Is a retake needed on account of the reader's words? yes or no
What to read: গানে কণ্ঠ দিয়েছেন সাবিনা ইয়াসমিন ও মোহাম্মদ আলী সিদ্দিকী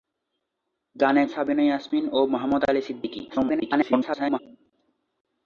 yes